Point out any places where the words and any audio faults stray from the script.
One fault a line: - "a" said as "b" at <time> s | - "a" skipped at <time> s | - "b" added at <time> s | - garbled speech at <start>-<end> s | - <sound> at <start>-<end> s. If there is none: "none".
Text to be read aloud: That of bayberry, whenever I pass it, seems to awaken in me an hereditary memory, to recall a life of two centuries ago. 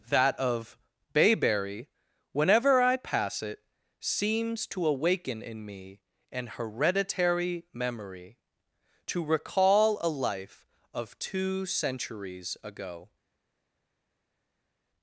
none